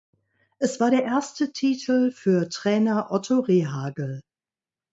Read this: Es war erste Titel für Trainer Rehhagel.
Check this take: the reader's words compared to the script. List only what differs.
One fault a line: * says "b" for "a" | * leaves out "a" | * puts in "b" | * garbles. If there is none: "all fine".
* puts in "der"
* puts in "Otto"